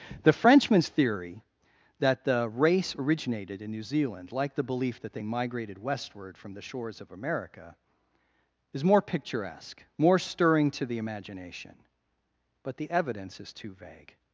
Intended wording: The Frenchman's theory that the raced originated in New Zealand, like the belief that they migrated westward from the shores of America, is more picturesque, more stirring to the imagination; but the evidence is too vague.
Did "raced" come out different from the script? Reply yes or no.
yes